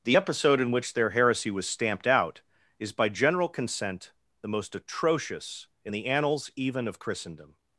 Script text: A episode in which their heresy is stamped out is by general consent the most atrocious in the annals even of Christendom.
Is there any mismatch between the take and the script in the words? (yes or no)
yes